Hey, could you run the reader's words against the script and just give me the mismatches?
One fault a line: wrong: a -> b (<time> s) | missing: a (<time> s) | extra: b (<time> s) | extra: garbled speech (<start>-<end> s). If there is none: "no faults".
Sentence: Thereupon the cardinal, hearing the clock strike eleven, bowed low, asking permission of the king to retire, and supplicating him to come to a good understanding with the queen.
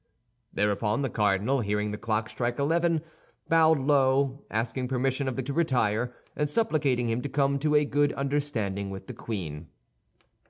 missing: king (5.4 s)